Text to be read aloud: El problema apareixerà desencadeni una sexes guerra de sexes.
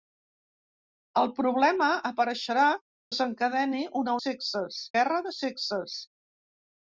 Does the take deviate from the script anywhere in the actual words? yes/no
no